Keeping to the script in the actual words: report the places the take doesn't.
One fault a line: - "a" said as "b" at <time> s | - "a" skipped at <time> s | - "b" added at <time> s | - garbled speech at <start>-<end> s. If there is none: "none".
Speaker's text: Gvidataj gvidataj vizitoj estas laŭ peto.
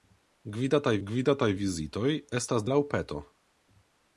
none